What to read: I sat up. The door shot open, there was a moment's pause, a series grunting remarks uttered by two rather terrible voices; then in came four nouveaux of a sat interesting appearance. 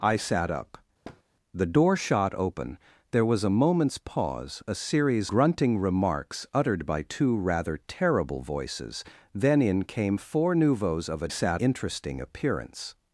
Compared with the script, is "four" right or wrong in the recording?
right